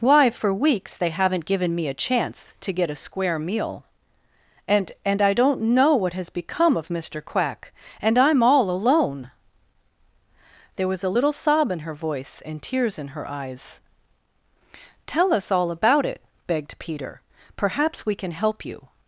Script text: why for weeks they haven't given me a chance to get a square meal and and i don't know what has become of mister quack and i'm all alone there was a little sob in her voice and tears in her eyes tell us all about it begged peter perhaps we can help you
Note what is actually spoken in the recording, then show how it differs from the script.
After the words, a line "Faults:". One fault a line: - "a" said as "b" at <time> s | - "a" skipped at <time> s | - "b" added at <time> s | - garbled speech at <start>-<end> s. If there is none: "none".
why for weeks they haven't given me a chance to get a square meal and and i don't know what has become of mister quack and i'm all alone there was a little sob in her voice and tears in her eyes tell us all about it begged peter perhaps we can help you
Faults:
none